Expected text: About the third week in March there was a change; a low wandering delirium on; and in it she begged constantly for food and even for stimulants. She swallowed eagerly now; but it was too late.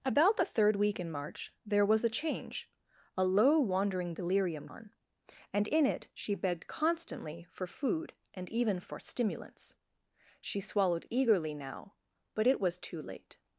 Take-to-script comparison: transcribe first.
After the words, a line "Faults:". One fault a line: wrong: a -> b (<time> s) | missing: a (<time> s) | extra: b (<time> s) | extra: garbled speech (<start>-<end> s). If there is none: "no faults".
About the third week in March there was a change; a low wandering delirium on; and in it she begged constantly for food and even for stimulants. She swallowed eagerly now; but it was too late.
Faults:
no faults